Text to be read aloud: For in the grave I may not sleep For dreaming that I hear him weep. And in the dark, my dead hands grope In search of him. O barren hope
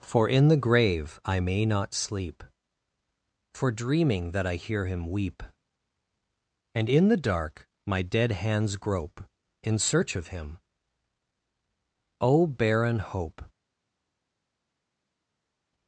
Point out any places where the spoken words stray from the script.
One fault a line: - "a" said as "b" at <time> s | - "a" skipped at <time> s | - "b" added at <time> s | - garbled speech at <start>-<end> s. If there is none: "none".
none